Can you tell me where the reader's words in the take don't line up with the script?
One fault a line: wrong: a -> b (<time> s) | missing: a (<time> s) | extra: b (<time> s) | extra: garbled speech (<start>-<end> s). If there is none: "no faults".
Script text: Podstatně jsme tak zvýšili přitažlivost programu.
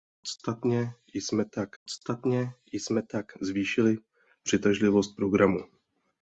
extra: podstatně jsme tak (1.8 s)